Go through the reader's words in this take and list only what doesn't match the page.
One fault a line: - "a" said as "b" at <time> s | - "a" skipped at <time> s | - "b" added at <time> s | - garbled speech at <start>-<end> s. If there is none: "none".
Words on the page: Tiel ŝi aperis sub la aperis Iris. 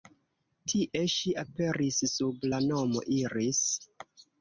- "Tiel" said as "Tie" at 0.7 s
- "aperis" said as "nomo" at 2.7 s